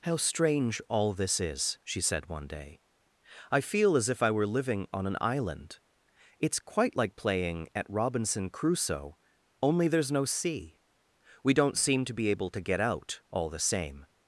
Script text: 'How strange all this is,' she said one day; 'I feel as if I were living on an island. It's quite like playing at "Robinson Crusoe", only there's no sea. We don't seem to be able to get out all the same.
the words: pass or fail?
pass